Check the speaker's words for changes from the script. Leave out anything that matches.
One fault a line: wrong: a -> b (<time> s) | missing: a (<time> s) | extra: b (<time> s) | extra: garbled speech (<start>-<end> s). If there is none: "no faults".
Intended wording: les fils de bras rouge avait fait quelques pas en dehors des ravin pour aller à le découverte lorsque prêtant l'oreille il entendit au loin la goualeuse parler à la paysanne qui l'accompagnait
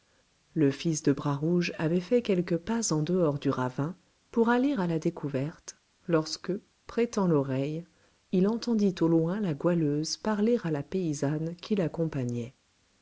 wrong: les -> le (0.6 s)
wrong: des -> du (3.4 s)
wrong: le -> la (4.9 s)